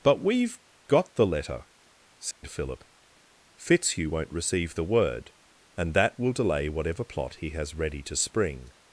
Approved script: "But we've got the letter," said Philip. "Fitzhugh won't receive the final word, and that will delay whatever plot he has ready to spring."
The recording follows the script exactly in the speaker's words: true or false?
false